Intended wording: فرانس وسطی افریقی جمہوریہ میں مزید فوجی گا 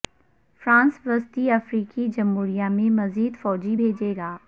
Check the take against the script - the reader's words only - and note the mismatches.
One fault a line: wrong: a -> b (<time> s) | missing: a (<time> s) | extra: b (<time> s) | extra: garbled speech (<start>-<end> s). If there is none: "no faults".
extra: بھیجے (3.7 s)